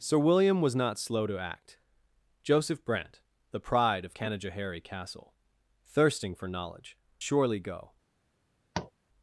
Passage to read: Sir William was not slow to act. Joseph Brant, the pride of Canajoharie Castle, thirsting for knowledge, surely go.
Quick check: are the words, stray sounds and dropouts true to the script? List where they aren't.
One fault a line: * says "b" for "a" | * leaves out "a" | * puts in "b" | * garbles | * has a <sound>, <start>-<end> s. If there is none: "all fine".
* has a tap, 8.7-8.9 s